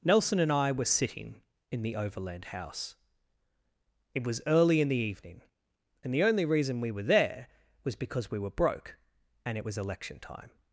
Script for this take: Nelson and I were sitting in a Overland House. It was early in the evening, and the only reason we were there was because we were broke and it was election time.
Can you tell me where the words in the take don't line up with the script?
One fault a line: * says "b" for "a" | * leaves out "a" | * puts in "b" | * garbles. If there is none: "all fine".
* says "the" for "a"